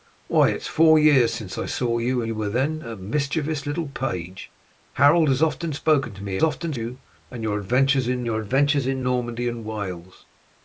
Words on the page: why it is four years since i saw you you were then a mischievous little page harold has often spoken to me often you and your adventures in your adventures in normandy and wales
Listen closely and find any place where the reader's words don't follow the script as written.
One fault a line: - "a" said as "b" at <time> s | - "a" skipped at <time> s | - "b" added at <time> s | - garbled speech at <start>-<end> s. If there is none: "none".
none